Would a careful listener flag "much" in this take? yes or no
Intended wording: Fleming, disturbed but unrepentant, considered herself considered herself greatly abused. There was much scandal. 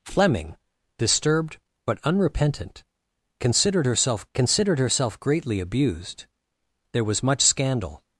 no